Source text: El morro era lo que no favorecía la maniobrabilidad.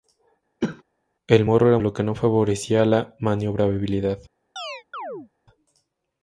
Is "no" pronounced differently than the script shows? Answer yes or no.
no